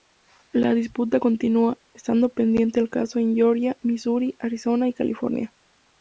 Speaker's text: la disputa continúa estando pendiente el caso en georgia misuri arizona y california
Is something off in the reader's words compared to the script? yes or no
no